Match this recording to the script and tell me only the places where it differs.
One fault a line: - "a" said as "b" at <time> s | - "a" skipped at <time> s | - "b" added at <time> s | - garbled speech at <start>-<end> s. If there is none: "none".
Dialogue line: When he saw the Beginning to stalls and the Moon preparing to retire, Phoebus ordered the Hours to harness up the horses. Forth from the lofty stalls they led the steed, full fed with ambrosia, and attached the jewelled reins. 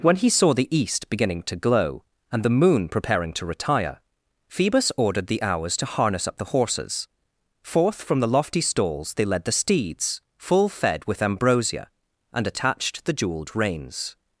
- "East" added at 0.8 s
- "stalls" said as "glow" at 1.6 s
- "steed" said as "steeds" at 9.5 s